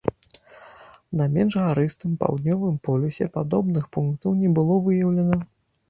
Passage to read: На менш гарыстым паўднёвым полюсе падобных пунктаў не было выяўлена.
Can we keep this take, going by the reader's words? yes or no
yes